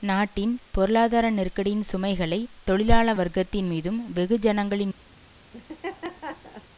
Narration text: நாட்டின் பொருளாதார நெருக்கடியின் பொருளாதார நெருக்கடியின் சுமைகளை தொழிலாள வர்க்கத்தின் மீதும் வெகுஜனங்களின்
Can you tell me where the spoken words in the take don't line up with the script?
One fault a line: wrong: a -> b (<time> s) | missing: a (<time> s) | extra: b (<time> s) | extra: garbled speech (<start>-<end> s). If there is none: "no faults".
missing: பொருளாதார நெருக்கடியின் (1.8 s)